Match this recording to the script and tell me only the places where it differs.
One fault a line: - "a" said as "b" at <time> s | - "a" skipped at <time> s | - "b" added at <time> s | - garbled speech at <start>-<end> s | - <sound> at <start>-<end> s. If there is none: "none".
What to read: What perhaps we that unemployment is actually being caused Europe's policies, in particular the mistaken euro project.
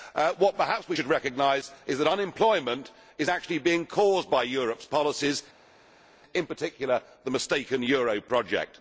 - "should recognise is" added at 0.9 s
- "by" added at 4.3 s